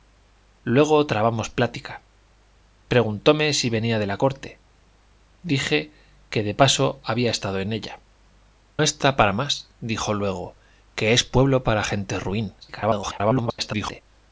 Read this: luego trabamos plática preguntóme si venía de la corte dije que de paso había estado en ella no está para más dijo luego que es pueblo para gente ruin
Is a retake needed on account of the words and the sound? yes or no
yes